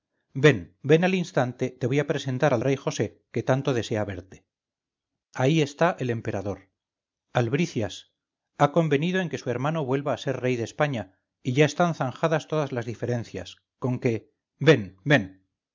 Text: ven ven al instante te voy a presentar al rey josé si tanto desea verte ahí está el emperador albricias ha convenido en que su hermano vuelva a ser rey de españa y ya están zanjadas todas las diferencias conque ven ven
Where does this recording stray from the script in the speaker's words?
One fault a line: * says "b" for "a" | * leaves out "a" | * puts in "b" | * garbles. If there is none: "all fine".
* says "que" for "si"